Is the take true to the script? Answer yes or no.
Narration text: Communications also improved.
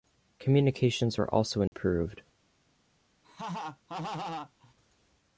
no